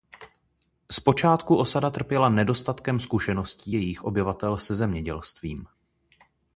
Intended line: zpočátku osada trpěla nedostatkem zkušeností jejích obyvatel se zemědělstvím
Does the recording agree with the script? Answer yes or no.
yes